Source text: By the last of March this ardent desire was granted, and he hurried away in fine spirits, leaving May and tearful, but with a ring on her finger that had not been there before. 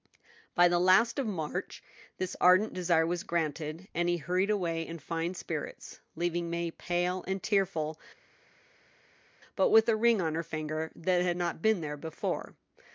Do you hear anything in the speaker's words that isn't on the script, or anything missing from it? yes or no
yes